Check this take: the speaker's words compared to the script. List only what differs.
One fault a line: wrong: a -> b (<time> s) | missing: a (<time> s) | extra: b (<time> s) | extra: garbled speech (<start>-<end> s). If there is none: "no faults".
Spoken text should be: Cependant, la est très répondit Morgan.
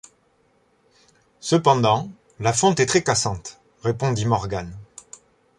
extra: fonte (2.5 s)
extra: cassante (3.0 s)